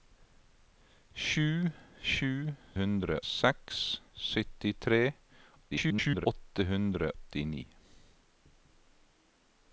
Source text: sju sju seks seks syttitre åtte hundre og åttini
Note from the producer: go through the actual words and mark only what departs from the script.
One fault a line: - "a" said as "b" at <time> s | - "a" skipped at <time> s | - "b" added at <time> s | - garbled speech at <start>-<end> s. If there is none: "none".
- "seks" said as "hundre" at 2.8 s
- garbled speech at 5.7-6.3 s
- "og" skipped at 7.1 s